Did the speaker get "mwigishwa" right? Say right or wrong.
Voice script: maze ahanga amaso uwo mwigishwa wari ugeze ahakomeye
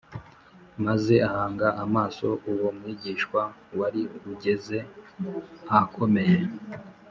right